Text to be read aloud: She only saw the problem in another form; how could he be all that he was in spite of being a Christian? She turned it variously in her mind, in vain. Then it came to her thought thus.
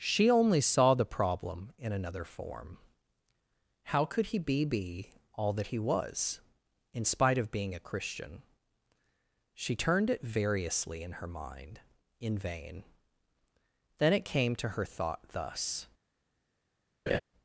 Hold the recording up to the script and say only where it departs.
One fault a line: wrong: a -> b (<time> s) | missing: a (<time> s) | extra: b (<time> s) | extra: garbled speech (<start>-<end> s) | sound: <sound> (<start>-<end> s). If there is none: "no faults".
extra: be (4.6 s)
sound: laugh (17.1-17.2 s)